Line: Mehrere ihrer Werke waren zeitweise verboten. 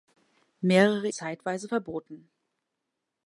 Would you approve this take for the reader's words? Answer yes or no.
no